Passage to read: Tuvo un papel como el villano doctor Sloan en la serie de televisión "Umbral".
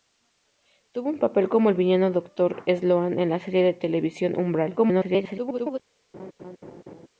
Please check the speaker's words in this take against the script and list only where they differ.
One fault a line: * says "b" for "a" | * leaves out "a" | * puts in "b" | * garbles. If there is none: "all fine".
* garbles